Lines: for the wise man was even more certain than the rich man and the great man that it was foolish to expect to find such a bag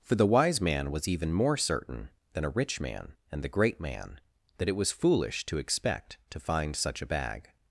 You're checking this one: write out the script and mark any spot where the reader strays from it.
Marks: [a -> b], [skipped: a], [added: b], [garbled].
for the wise man was even more certain than [the -> a] rich man and the great man that it was foolish to expect to find such a bag